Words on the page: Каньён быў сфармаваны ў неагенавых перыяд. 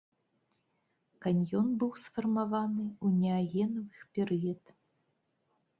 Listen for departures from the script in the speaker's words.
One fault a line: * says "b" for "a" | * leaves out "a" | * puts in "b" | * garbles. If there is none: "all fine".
all fine